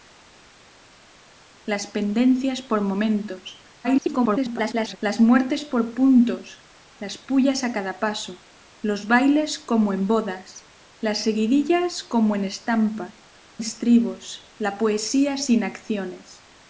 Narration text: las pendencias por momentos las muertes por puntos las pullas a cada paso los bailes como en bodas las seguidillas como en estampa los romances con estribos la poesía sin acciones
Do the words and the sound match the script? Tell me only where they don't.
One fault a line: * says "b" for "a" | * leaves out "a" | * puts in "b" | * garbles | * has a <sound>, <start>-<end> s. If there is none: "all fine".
* garbles
* leaves out "los romances con"